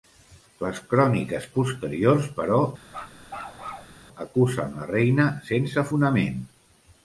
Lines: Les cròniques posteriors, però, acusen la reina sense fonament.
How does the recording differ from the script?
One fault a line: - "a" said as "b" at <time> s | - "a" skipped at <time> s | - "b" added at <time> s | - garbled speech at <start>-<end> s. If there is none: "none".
none